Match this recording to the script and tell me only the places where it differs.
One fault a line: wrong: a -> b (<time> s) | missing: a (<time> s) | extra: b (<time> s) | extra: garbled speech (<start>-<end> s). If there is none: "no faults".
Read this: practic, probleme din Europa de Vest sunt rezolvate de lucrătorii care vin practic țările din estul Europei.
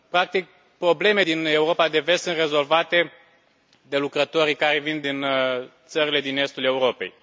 wrong: practic -> din (5.0 s)